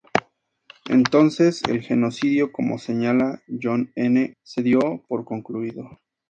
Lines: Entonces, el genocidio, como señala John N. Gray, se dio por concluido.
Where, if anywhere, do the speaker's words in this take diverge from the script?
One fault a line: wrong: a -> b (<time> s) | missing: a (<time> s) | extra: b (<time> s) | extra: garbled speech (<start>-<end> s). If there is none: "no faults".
missing: Gray (4.3 s)